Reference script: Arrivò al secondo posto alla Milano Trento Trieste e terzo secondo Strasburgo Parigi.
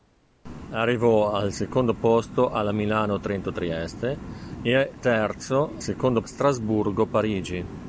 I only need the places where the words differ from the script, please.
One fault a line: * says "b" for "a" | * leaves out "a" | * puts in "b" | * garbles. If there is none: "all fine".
all fine